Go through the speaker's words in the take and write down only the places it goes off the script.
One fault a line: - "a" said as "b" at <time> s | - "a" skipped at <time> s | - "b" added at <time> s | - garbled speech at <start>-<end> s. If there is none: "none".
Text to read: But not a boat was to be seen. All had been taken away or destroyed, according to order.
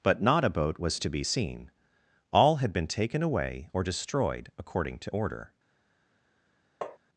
none